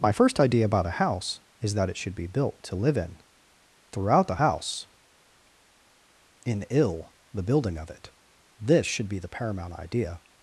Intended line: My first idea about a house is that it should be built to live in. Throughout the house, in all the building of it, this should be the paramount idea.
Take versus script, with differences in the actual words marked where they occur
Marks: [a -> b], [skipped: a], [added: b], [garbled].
My first idea about a house is that it should be built to live in. Throughout the house, in [all -> ill] the building of it, this should be the paramount idea.